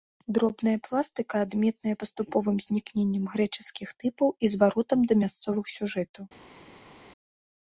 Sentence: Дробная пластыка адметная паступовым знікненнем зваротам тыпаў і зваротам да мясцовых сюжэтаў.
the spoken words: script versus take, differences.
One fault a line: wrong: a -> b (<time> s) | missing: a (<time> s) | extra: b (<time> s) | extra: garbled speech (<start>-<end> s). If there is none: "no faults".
wrong: зваротам -> грэчаскіх (3.3 s)